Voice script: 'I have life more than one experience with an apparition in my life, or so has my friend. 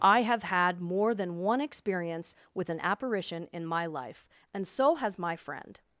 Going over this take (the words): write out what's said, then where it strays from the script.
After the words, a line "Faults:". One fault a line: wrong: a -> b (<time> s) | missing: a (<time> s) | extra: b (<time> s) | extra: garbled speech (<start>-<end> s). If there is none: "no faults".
'I have had more than one experience with an apparition in my life, and so has my friend.
Faults:
wrong: life -> had (0.4 s)
wrong: or -> and (4.5 s)